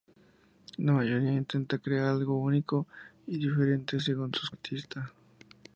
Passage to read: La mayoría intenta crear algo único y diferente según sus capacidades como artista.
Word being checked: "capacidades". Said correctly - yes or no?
no